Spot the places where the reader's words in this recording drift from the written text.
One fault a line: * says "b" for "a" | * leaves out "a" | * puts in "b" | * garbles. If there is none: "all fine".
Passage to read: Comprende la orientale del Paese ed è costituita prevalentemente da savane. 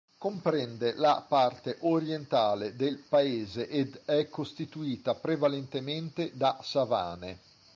* puts in "parte"